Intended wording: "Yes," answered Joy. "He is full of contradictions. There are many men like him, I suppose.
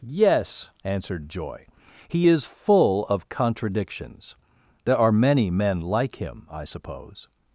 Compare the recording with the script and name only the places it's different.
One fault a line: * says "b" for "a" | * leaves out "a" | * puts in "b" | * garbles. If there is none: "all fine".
all fine